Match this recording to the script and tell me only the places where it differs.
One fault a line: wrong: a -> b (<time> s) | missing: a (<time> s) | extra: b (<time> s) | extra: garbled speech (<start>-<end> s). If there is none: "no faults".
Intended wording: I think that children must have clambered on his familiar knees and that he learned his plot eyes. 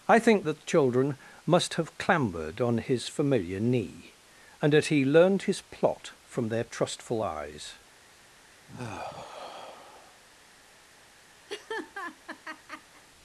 wrong: knees -> knee (3.6 s)
extra: from their trustful (6.2 s)